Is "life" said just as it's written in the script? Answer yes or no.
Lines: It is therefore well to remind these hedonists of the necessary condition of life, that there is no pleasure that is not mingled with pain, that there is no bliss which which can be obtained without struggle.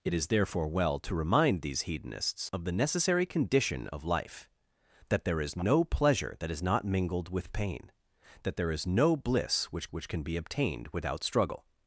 yes